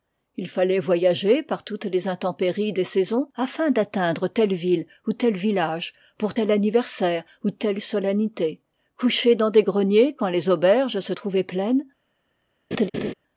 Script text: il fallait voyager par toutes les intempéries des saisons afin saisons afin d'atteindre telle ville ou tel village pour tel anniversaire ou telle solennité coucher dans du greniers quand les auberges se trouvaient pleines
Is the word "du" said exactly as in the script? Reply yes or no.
no